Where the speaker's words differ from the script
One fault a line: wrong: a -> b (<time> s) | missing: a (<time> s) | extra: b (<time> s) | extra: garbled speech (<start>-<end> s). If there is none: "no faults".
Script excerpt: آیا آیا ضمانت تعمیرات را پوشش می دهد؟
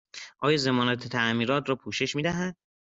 missing: آیا (0.6 s)